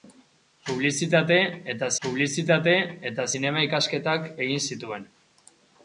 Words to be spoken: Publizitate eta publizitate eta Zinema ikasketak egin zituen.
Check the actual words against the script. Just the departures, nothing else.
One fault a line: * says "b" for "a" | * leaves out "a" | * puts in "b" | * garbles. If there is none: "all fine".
all fine